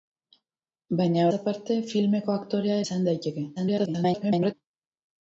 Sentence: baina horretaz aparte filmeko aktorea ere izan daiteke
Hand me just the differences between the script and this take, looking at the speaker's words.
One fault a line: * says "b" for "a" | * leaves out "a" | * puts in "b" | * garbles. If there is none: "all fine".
* leaves out "horretaz"
* leaves out "ere"
* garbles